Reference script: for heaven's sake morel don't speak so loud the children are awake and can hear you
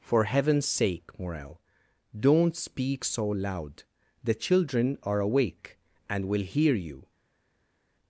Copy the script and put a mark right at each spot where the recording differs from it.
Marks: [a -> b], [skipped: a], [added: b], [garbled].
for heaven's sake morel don't speak so loud the children are awake and [can -> will] hear you